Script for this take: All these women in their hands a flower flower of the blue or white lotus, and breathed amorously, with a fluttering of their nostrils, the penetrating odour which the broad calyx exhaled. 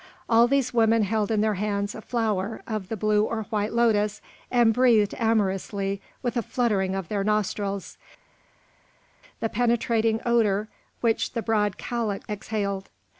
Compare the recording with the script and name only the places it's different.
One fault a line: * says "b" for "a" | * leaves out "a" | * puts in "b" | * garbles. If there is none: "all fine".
* puts in "held"
* leaves out "flower"